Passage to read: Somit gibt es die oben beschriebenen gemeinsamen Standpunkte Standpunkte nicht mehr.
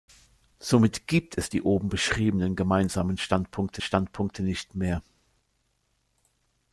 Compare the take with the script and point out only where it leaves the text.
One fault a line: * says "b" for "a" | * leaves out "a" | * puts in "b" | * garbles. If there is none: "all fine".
all fine